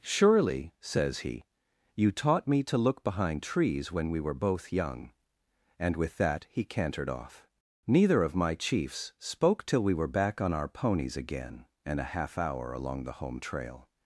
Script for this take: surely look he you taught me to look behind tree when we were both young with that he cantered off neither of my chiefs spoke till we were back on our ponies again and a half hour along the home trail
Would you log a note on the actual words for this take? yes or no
yes